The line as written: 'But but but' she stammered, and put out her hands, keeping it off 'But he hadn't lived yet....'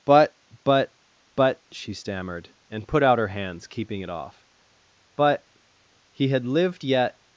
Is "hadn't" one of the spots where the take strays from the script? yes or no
yes